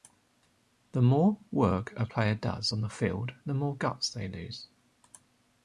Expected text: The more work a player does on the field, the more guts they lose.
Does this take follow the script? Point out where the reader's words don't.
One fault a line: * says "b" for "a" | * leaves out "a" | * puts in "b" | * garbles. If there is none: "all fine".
all fine